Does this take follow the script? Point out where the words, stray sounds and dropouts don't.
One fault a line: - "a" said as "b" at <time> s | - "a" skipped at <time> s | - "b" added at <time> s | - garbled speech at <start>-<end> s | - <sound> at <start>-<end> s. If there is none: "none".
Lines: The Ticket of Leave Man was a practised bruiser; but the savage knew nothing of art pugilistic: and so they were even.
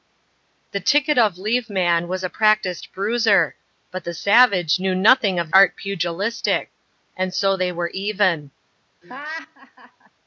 - laugh at 9.0-10.1 s